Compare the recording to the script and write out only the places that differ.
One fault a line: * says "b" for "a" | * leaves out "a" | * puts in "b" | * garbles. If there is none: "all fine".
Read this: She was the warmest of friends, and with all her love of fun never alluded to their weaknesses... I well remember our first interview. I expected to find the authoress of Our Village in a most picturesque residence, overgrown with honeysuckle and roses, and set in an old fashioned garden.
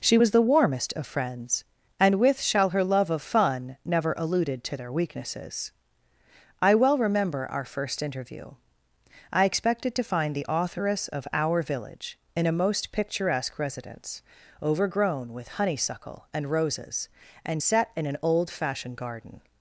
* says "shall" for "all"